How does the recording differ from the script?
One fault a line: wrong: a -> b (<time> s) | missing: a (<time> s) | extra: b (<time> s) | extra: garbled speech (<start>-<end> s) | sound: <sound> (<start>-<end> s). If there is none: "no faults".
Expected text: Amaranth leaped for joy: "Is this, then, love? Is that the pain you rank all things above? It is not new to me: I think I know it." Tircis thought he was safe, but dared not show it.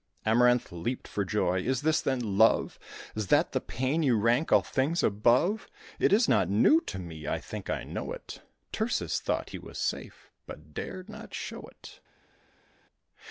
no faults